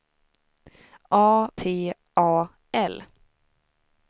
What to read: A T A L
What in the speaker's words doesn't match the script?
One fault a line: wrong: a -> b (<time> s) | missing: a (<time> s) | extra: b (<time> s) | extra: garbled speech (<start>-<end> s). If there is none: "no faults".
no faults